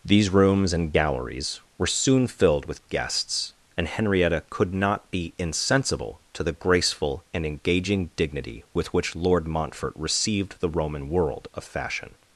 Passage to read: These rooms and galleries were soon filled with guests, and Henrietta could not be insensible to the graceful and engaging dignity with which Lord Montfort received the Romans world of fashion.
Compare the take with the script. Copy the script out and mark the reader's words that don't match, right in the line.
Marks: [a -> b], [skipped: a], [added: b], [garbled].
These rooms and galleries were soon filled with guests, and Henrietta could not be insensible to the graceful and engaging dignity with which Lord Montfort received the [Romans -> Roman] world of fashion.